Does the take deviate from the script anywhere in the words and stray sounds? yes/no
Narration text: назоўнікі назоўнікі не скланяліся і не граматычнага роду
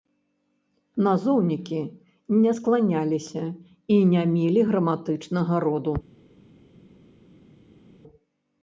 yes